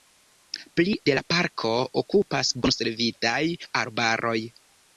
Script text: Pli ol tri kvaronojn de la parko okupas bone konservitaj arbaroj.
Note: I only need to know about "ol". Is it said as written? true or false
false